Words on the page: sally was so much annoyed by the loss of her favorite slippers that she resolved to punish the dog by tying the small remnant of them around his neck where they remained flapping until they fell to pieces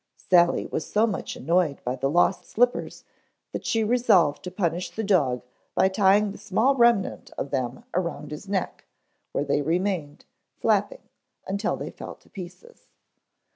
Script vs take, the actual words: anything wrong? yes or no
yes